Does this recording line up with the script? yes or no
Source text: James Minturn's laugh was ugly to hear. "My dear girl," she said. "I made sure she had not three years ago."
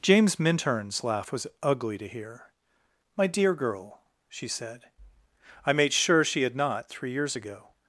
yes